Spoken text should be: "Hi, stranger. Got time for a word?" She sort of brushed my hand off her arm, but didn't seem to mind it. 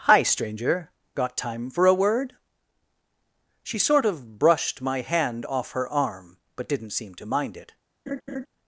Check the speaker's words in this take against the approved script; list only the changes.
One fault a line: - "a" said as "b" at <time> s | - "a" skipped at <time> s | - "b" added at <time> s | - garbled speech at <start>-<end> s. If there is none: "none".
none